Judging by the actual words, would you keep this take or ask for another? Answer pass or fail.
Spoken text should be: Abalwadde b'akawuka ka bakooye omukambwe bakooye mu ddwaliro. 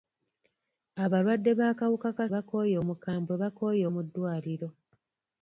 pass